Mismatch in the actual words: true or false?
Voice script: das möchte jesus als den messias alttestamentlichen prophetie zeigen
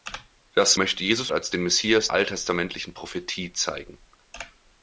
false